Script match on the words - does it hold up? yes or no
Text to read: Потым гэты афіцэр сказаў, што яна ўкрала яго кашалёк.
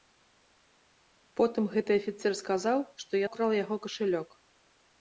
no